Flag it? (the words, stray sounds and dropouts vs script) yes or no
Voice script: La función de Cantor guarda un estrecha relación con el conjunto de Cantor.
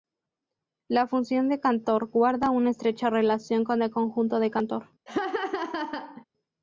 yes